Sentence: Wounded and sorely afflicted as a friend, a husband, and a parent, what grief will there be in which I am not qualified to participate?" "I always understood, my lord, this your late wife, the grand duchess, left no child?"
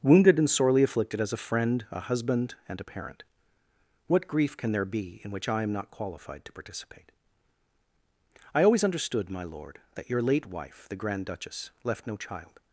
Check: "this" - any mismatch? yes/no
yes